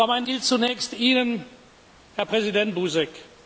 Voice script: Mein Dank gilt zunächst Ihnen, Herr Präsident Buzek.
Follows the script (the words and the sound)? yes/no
no